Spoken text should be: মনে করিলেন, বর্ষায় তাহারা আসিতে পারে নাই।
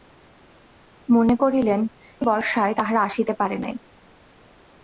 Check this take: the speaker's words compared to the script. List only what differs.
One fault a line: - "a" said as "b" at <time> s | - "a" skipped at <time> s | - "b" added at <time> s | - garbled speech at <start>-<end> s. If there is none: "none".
none